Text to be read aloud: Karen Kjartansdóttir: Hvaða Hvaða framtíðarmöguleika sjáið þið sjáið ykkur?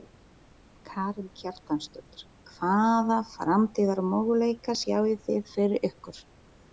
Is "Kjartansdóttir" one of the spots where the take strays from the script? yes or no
no